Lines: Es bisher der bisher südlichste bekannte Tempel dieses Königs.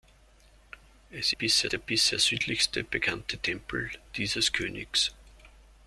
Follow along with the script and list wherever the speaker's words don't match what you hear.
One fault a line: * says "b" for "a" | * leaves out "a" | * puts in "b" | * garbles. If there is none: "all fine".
all fine